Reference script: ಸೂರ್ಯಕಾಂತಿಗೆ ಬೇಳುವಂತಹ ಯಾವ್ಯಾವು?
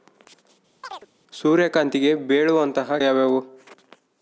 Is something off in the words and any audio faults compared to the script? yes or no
yes